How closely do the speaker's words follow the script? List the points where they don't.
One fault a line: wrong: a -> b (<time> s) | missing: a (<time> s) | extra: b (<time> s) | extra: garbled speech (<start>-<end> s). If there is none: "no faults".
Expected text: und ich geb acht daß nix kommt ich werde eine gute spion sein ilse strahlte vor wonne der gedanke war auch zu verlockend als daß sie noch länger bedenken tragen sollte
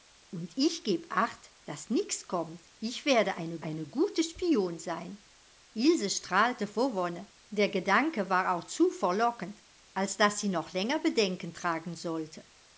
extra: eine (3.6 s)